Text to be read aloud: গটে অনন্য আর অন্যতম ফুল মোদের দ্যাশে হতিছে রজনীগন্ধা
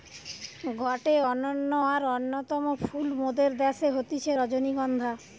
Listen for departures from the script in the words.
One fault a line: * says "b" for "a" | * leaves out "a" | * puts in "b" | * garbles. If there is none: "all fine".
all fine